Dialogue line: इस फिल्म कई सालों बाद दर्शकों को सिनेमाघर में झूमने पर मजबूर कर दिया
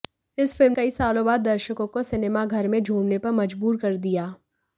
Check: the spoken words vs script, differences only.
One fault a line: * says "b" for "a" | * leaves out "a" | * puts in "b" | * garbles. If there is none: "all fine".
all fine